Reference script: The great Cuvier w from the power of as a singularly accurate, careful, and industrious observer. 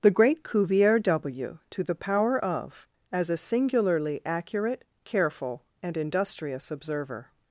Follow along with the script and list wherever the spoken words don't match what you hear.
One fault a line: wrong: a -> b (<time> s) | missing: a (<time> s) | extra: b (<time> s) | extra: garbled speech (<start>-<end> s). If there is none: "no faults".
wrong: from -> to (1.7 s)